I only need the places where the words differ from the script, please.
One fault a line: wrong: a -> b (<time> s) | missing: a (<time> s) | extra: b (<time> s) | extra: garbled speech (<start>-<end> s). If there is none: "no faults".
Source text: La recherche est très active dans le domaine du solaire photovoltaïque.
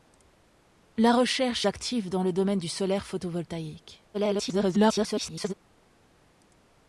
missing: est très (1.7 s)
extra: garbled speech (4.1-5.5 s)